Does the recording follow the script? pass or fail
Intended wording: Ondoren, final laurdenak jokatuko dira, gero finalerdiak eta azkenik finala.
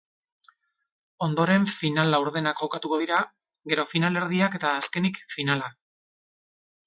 pass